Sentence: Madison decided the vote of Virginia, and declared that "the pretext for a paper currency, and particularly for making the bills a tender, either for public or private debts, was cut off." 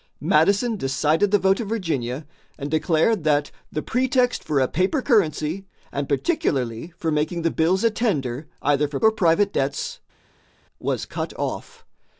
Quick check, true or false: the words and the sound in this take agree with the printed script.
false